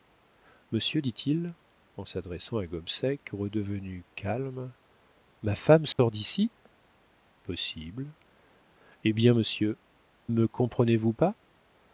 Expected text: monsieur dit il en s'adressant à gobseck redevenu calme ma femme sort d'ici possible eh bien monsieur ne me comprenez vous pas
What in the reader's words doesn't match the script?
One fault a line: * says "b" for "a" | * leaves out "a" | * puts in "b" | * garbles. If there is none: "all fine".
* leaves out "ne"